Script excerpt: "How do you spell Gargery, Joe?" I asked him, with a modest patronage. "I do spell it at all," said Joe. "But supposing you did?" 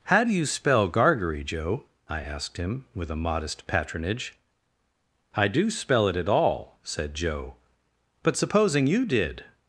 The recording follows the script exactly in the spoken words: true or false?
true